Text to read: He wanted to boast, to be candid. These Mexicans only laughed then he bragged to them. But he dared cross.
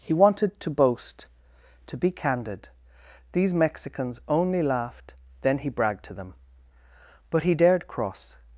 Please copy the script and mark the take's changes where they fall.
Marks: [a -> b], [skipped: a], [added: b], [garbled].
He wanted to boast, to be candid. These Mexicans only laughed then he bragged to them. But he dared cross.